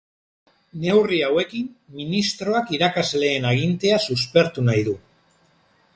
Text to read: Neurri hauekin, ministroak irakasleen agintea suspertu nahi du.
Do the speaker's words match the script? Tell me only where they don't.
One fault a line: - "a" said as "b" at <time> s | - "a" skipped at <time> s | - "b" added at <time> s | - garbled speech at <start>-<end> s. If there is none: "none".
none